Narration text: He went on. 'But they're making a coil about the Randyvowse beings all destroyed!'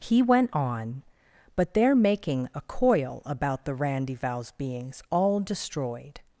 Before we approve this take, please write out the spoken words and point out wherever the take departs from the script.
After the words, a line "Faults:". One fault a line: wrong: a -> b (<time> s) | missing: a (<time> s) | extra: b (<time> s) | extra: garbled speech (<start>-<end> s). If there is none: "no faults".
He went on. 'But they're making a coil about the Randyvowse beings all destroyed!'
Faults:
no faults